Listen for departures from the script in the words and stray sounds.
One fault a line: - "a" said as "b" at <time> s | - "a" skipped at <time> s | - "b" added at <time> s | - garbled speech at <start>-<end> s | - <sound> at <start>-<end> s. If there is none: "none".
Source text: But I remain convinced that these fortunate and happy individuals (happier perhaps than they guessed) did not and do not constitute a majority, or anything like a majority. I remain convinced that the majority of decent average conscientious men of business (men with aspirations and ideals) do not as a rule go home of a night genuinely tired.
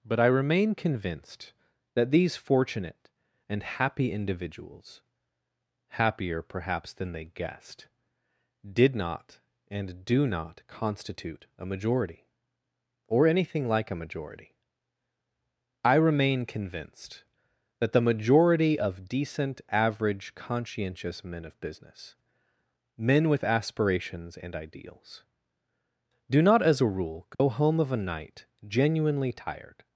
- dropout at 27.3-27.4 s